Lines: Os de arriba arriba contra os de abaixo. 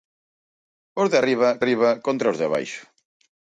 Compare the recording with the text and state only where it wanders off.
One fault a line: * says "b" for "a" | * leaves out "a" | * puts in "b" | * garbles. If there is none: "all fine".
all fine